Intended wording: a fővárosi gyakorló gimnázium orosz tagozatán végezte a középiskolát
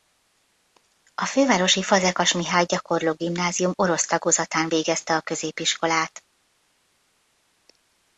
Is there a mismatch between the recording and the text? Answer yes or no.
yes